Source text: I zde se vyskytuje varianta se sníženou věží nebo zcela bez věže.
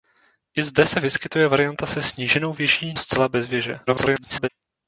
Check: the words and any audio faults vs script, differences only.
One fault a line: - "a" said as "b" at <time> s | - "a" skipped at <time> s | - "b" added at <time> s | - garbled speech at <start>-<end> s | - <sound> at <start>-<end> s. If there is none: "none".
- "nebo" skipped at 2.9 s
- garbled speech at 3.9-4.5 s